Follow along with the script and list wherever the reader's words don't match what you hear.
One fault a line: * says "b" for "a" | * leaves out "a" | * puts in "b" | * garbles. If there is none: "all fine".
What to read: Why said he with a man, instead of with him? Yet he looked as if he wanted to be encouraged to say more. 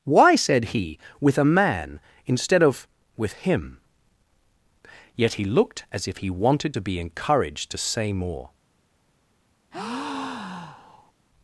all fine